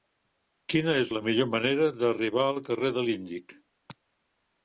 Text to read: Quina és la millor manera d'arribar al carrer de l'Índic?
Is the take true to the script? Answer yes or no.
yes